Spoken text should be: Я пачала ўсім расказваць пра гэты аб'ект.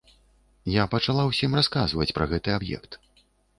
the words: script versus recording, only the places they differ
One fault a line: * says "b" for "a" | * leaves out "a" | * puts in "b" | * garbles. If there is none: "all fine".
all fine